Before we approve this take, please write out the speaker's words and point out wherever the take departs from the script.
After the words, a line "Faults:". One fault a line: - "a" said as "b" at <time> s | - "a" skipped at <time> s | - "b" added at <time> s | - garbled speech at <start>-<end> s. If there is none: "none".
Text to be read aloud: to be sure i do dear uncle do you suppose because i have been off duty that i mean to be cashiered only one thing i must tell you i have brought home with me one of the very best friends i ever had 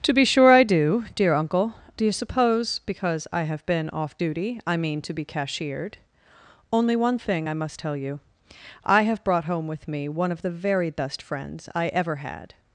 to be sure i do dear uncle do you suppose because i have been off duty i mean to be cashiered only one thing i must tell you i have brought home with me one of the very best friends i ever had
Faults:
- "that" skipped at 4.6 s